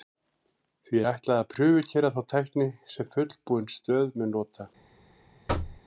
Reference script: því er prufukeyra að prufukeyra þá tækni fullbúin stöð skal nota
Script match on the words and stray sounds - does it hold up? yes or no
no